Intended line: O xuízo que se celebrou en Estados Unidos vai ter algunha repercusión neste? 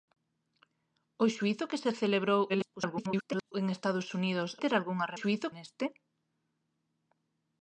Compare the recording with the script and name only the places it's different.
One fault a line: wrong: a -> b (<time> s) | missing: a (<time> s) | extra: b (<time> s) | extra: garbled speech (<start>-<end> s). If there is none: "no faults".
extra: garbled speech (2.5-3.5 s)
missing: vai (4.5 s)
wrong: repercusión -> xuízo (5.2 s)